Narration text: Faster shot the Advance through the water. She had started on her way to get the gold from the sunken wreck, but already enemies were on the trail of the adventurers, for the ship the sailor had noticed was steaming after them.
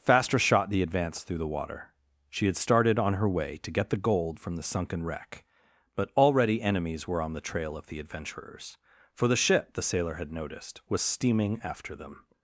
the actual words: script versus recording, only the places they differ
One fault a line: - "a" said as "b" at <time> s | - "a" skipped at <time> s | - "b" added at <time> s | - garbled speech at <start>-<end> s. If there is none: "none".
none